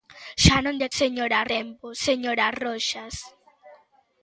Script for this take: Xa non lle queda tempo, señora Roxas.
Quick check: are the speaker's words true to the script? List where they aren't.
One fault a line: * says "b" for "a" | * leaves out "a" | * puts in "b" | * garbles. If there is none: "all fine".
* says "señora" for "queda"